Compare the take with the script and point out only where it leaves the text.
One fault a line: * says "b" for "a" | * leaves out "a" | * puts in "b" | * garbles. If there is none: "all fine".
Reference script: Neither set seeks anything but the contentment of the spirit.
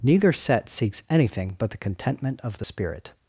all fine